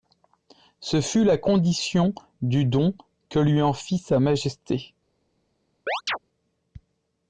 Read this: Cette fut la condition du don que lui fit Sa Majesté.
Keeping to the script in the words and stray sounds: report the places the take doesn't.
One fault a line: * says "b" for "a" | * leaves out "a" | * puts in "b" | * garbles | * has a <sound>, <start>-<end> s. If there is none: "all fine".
* says "Ce" for "Cette"
* puts in "en"
* has a chirp, 5.9-6.2 s